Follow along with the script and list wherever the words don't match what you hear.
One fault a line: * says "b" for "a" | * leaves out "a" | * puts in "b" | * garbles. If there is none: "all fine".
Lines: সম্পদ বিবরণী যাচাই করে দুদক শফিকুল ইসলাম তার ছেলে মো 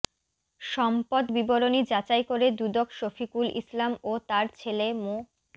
* puts in "ও"